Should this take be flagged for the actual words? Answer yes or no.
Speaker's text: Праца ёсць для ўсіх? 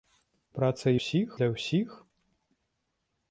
yes